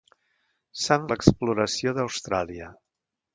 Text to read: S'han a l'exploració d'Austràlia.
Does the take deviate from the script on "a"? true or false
false